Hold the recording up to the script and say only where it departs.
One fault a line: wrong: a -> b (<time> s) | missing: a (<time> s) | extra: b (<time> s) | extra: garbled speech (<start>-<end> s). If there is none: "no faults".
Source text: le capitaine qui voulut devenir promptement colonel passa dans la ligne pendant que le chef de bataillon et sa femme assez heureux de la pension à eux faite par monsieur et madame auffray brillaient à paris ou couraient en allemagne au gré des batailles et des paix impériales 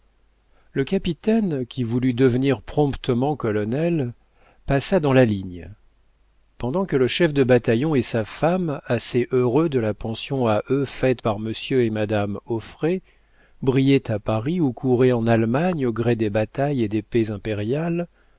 no faults